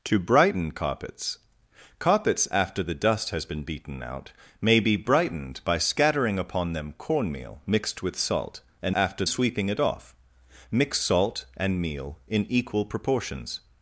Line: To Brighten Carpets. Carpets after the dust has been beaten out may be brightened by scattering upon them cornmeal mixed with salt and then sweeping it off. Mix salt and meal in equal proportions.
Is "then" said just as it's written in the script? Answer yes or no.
no